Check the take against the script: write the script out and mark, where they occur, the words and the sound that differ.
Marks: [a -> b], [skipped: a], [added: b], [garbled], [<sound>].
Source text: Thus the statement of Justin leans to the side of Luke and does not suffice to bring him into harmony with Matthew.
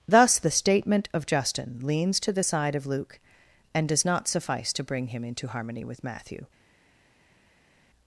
Thus the statement of Justin leans to the side of Luke and does not suffice to bring him into harmony with Matthew.